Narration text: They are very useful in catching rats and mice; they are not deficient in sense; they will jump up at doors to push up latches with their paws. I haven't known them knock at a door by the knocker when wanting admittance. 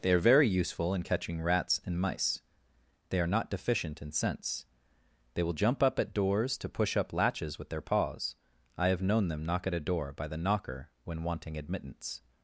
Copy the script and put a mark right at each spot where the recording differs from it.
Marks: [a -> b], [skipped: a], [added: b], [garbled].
They are very useful in catching rats and mice; they are not deficient in sense; they will jump up at doors to push up latches with their paws. I [haven't -> have] known them knock at a door by the knocker when wanting admittance.